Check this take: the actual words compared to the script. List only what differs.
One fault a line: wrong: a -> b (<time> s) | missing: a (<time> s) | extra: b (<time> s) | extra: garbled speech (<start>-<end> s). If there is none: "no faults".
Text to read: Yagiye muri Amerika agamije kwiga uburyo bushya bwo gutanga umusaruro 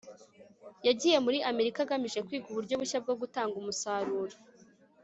no faults